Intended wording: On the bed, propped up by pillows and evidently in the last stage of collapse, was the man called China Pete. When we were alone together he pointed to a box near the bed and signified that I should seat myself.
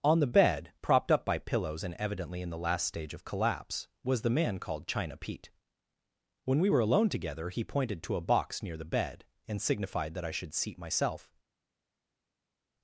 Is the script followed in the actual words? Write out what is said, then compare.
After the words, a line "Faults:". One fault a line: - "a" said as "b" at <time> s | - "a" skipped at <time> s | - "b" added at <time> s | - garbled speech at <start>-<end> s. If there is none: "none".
On the bed, propped up by pillows and evidently in the last stage of collapse, was the man called China Pete. When we were alone together he pointed to a box near the bed and signified that I should seat myself.
Faults:
none